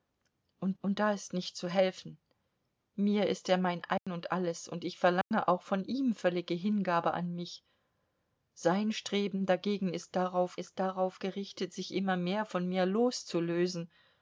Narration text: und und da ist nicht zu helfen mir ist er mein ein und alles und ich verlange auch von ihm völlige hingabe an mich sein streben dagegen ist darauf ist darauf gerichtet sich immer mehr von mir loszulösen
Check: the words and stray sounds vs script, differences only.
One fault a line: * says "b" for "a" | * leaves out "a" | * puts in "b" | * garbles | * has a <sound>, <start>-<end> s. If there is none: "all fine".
* has a dropout, 4.0-4.1 s
* has a dropout, 5.2-5.3 s